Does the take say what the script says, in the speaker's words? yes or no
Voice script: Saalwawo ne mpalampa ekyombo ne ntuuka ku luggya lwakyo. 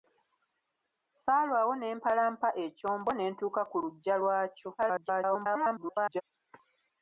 no